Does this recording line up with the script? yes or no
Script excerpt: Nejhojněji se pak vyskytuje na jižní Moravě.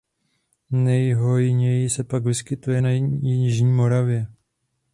yes